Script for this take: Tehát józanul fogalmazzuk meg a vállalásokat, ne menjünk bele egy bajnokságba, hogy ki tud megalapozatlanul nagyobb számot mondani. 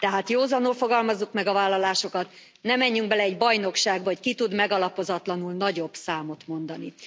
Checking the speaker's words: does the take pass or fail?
pass